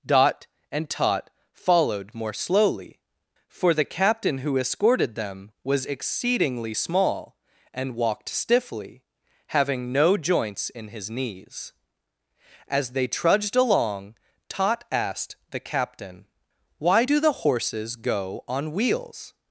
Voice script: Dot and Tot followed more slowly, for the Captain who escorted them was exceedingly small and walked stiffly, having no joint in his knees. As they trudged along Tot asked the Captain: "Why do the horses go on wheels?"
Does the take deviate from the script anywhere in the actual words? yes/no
yes